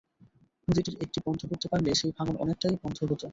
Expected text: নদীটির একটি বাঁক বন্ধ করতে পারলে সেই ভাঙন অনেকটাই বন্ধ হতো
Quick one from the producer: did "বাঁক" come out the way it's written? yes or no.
no